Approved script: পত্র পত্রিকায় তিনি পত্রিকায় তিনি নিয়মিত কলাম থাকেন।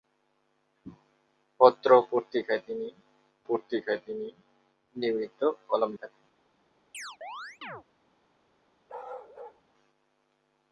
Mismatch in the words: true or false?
false